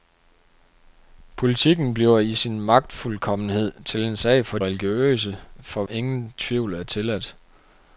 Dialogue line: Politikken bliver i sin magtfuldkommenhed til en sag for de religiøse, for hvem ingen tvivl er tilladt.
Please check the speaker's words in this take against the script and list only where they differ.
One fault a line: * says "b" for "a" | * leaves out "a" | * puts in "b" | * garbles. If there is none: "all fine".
* leaves out "de"
* leaves out "hvem"